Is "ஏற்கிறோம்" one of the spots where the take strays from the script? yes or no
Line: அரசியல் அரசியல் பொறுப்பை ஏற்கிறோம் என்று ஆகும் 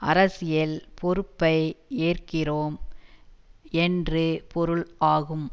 no